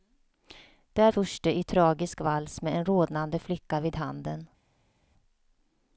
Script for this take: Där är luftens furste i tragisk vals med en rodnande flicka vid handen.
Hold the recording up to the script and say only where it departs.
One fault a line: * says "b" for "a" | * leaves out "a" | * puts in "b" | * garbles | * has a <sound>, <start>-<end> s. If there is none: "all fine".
* leaves out "är luftens"